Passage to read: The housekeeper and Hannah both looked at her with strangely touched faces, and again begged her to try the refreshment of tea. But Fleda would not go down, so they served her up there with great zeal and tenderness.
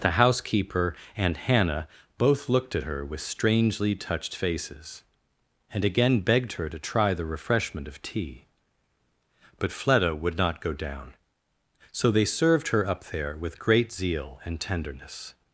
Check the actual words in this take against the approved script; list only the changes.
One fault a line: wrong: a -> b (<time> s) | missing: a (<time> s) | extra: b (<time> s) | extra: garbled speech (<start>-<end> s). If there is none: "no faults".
no faults